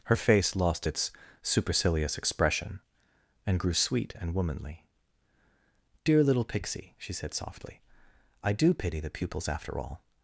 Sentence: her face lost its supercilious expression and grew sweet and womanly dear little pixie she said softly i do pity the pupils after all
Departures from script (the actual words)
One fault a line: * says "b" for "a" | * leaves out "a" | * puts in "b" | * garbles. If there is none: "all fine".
all fine